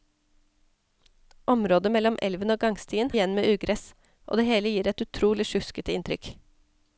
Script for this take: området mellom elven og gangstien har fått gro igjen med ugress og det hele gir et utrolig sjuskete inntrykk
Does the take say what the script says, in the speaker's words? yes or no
no